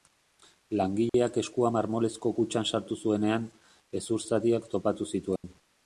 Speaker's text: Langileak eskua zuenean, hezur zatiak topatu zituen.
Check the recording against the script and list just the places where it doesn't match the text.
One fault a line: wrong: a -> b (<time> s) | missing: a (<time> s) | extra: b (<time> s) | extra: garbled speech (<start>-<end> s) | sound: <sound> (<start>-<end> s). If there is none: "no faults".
sound: dropout (1.1-1.1 s)
extra: marmolezko kutxan sartu (1.7 s)
sound: dropout (5.4-5.4 s)